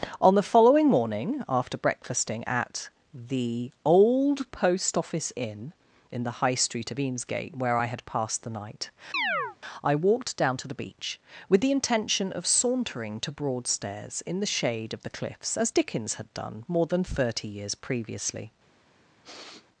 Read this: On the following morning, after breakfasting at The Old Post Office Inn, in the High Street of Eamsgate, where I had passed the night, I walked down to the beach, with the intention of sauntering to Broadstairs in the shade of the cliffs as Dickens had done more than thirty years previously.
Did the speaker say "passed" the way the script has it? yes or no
yes